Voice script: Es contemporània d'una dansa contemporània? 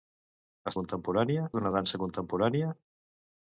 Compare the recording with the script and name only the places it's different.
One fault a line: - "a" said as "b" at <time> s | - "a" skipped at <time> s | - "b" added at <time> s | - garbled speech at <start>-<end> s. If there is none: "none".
none